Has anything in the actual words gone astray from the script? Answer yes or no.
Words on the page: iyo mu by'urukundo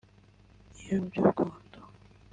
no